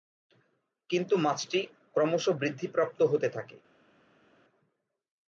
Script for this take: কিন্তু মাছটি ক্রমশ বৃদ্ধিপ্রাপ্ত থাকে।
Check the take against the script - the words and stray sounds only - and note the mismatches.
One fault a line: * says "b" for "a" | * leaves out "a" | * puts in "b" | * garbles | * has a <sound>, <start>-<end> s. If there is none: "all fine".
* puts in "হতে"